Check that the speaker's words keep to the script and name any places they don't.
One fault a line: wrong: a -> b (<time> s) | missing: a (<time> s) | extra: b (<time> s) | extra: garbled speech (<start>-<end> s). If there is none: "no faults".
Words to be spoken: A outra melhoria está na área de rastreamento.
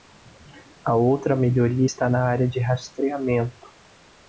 no faults